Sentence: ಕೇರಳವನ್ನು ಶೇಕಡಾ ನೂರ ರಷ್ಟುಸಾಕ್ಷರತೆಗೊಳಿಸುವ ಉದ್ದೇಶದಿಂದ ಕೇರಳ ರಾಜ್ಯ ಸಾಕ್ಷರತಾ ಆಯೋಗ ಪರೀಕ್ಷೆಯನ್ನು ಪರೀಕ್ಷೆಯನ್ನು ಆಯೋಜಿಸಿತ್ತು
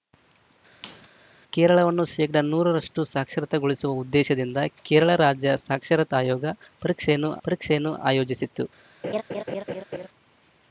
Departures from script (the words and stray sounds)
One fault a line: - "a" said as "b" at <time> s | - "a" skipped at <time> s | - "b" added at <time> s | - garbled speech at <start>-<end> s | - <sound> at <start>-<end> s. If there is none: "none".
- squeak at 0.8-1.1 s
- laugh at 9.0-10.1 s